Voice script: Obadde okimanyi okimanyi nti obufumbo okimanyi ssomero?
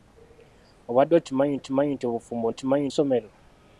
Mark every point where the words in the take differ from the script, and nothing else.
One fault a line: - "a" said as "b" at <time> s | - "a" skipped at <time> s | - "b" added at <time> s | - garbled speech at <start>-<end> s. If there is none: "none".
none